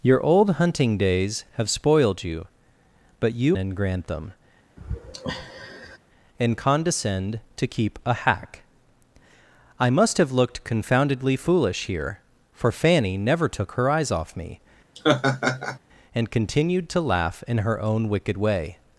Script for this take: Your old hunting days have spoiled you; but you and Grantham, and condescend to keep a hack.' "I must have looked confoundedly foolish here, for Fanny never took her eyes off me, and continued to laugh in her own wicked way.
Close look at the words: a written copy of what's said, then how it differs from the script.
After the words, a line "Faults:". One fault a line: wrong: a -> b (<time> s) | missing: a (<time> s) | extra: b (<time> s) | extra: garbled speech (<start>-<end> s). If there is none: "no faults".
Your old hunting days have spoiled you; but you and Grantham, and condescend to keep a hack.' "I must have looked confoundedly foolish here, for Fanny never took her eyes off me, and continued to laugh in her own wicked way.
Faults:
no faults